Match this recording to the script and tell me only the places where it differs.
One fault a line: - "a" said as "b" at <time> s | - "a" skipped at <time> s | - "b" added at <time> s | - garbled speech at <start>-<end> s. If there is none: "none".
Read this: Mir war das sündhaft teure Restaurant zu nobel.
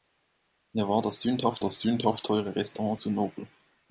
- "das sündhaft" added at 1.6 s